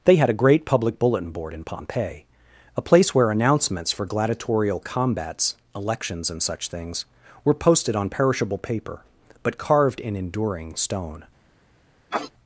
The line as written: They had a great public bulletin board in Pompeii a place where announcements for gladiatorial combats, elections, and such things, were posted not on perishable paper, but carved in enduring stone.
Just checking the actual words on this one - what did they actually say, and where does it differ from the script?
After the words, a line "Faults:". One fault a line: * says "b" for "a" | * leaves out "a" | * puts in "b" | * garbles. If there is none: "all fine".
They had a great public bulletin board in Pompeii a place where announcements for gladiatorial combats, elections, and such things, were posted on perishable paper, but carved in enduring stone.
Faults:
* leaves out "not"